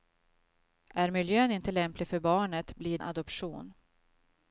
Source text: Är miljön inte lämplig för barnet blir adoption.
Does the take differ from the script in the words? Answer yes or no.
no